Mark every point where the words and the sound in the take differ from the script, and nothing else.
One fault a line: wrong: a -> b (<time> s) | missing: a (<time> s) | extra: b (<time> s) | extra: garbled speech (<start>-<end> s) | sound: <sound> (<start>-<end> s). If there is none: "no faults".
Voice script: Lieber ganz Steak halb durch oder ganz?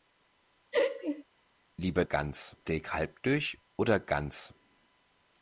sound: laugh (0.7-1.2 s)